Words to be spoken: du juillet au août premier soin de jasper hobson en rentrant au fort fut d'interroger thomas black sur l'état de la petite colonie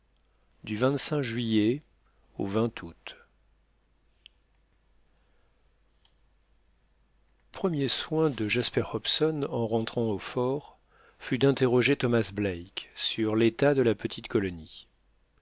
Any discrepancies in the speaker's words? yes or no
no